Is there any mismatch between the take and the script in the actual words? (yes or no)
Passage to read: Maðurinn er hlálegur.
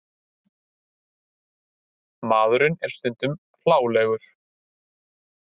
yes